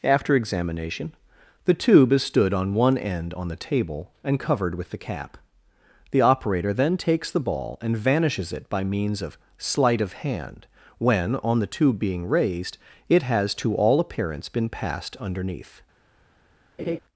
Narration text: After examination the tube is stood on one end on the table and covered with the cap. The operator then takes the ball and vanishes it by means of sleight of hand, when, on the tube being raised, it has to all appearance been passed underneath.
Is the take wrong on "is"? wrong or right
right